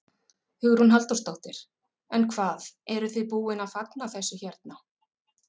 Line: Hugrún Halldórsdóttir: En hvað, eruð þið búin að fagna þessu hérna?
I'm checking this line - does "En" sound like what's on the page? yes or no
yes